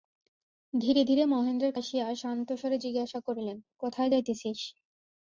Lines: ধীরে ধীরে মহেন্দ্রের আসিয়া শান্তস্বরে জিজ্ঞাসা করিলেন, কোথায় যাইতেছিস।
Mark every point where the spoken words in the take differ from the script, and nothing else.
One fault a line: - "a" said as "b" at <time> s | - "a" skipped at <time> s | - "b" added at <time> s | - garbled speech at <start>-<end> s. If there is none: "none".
none